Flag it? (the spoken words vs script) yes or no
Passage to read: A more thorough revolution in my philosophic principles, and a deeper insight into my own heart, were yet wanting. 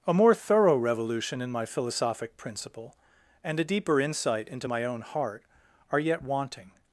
yes